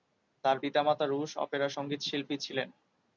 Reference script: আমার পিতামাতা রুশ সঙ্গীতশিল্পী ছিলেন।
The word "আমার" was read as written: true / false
false